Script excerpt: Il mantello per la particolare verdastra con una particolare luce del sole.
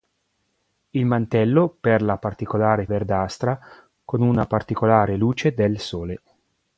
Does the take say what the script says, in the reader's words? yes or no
yes